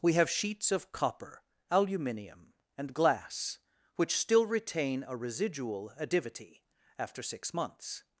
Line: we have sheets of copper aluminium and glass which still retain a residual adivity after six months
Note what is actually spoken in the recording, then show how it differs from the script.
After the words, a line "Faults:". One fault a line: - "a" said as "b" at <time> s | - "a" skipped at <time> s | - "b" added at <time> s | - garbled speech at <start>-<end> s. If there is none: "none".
we have sheets of copper aluminium and glass which still retain a residual adivity after six months
Faults:
none